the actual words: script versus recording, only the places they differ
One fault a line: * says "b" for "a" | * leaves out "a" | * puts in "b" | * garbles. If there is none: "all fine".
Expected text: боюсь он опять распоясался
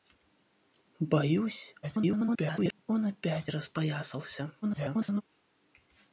* garbles
* garbles